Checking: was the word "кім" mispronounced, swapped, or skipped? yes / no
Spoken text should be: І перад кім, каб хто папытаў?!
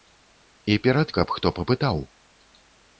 yes